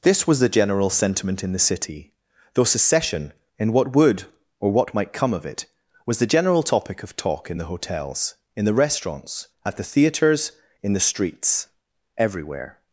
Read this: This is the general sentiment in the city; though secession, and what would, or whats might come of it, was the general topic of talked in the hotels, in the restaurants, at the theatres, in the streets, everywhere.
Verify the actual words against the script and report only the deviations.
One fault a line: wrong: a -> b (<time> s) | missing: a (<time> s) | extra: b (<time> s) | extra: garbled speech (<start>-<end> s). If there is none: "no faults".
wrong: is -> was (0.2 s)
wrong: whats -> what (4.7 s)
wrong: talked -> talk (7.2 s)